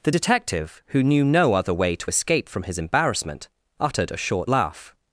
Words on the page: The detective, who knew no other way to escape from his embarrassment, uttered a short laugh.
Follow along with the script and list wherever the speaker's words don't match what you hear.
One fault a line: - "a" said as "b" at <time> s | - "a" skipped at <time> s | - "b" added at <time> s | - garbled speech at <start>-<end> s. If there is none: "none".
none